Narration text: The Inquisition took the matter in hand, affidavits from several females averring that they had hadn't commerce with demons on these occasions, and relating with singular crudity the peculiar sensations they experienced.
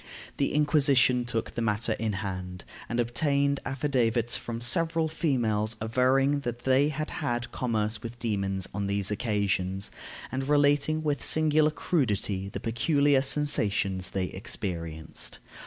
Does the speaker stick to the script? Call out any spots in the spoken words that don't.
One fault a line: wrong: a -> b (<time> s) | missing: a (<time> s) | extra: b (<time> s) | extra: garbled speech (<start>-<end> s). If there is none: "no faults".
extra: and obtained (2.9 s)
wrong: hadn't -> had (7.1 s)